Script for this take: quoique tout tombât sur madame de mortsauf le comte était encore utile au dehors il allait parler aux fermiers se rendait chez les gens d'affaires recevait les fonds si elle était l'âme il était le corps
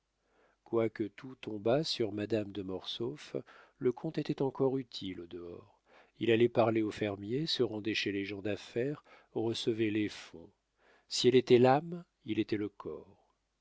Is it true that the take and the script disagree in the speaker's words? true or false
false